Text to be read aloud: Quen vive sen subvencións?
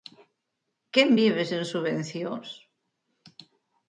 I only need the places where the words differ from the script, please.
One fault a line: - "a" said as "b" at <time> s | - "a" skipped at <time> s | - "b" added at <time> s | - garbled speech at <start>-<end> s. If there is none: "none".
none